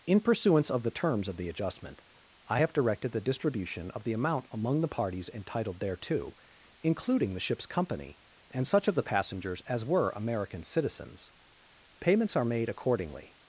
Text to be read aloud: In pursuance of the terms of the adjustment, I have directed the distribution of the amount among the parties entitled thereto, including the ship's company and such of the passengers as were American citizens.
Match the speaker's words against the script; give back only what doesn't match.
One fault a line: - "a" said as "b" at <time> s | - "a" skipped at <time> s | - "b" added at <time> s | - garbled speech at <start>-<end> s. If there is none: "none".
- "Payments are made accordingly" added at 12.0 s